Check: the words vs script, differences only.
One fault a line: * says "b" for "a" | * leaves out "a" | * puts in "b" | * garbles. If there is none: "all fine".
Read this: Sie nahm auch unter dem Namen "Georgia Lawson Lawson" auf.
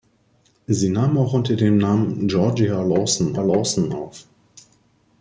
all fine